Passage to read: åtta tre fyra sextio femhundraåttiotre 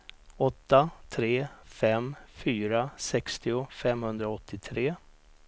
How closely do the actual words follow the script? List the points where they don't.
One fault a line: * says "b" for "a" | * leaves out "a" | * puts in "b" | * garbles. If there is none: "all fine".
* puts in "fem"